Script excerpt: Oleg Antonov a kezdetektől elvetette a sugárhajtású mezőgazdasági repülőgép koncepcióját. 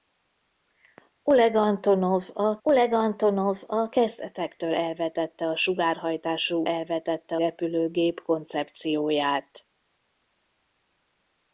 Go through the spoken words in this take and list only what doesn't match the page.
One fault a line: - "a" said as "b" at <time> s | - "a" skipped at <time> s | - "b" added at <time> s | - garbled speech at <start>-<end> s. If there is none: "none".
- "oleg Antonov a" added at 2.6 s
- "mezőgazdasági" said as "elvetette" at 6.6 s